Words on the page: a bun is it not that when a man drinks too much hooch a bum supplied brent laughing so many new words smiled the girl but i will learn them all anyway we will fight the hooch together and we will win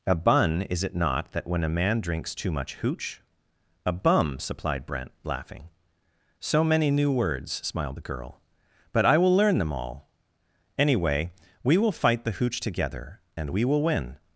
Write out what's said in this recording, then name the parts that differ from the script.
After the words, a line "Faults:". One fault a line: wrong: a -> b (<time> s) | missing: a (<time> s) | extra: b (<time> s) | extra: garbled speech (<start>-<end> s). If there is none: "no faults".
a bun is it not that when a man drinks too much hooch a bum supplied brent laughing so many new words smiled the girl but i will learn them all anyway we will fight the hooch together and we will win
Faults:
no faults